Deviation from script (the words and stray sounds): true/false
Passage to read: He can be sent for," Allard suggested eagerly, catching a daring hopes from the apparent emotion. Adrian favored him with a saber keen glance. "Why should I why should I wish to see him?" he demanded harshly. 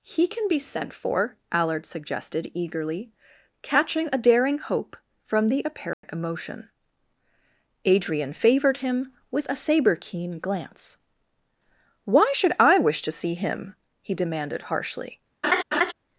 true